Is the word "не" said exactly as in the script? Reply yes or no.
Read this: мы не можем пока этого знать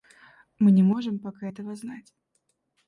yes